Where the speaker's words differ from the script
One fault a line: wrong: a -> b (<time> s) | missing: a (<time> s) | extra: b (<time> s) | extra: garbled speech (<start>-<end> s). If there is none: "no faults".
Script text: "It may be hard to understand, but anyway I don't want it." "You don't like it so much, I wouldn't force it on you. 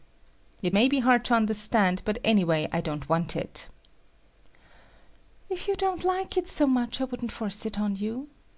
extra: If (5.5 s)